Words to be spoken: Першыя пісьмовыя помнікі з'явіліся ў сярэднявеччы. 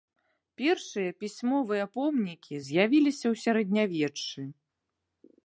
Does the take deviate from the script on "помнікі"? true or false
false